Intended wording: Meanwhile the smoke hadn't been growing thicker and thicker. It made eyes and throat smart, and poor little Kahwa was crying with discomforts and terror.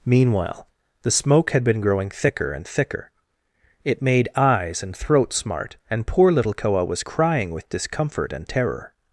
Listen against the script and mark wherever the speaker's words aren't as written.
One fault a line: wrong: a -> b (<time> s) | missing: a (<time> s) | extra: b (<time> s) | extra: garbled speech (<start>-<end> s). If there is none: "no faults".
wrong: hadn't -> had (1.5 s)
wrong: discomforts -> discomfort (7.7 s)